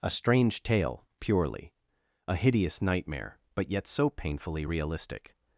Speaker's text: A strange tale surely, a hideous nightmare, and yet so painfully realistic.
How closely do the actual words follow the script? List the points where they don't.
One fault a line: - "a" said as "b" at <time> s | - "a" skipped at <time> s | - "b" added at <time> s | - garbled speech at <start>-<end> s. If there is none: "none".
- "surely" said as "purely" at 1.2 s
- "and" said as "but" at 3.5 s